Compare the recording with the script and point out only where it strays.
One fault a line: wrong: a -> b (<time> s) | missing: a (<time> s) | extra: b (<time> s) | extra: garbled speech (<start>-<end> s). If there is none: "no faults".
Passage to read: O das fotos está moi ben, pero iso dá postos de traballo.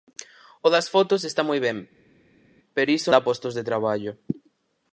no faults